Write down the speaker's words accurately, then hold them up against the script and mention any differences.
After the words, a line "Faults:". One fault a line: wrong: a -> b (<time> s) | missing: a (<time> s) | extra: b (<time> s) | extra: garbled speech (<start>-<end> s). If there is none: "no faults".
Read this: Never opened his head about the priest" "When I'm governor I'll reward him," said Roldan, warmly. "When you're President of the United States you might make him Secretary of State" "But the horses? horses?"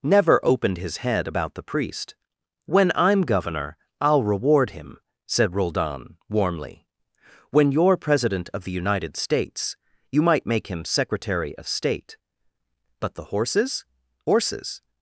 Never opened his head about the priest" "When I'm governor I'll reward him," said Roldan, warmly. "When you're President of the United States you might make him Secretary of State" "But the horses? horses?"
Faults:
no faults